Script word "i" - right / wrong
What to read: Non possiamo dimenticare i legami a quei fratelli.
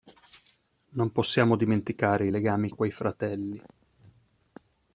right